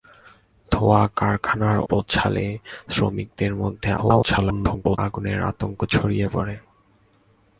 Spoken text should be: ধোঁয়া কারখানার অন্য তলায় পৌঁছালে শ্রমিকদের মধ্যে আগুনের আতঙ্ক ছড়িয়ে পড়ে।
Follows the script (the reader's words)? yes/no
no